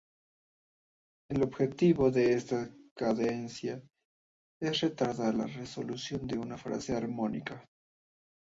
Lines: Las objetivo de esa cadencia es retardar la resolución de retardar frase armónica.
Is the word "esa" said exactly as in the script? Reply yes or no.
no